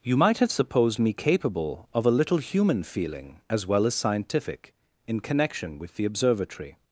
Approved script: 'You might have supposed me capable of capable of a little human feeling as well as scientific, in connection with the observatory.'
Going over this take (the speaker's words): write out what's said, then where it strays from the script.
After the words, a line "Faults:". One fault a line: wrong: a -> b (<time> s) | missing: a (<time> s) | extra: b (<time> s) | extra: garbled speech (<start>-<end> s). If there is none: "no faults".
'You might have supposed me capable of a little human feeling as well as scientific, in connection with the observatory.'
Faults:
missing: capable of (2.1 s)